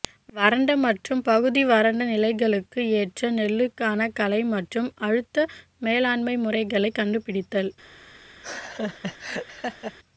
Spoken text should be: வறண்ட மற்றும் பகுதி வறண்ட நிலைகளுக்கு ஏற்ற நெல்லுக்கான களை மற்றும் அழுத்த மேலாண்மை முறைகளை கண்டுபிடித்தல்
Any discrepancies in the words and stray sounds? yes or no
yes